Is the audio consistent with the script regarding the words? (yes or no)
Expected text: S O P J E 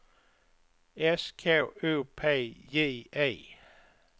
no